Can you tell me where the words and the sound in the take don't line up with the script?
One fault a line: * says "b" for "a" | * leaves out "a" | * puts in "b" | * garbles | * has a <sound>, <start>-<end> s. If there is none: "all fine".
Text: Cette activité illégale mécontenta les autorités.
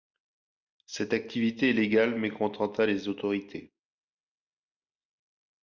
all fine